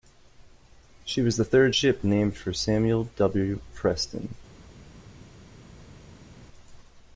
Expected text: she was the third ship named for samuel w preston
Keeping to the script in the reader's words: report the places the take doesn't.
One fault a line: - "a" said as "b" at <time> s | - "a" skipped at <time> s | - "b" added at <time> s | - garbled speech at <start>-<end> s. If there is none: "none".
none